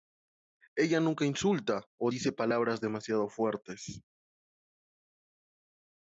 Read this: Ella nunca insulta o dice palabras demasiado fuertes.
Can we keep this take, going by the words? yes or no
yes